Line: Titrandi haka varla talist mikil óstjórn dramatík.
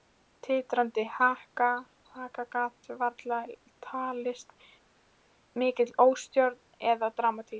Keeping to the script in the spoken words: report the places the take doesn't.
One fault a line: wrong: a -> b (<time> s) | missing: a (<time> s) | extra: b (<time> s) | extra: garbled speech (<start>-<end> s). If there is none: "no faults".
extra: gat (2.5 s)
extra: eða (6.9 s)